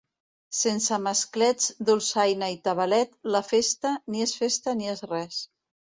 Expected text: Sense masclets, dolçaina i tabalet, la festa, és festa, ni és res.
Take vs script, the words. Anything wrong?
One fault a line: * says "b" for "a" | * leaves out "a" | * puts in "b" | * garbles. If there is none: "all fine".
* puts in "ni"